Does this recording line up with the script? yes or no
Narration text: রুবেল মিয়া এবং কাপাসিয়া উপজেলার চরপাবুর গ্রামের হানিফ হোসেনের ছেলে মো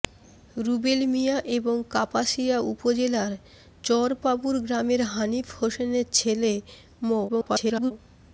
no